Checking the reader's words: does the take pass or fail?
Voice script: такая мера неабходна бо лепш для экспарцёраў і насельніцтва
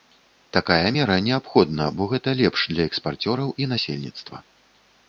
fail